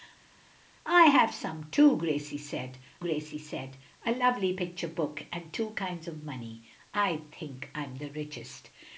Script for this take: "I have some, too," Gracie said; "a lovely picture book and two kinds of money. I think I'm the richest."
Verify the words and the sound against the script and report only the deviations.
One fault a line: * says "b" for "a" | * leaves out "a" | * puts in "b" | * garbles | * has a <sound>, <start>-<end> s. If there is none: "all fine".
* puts in "Gracie said"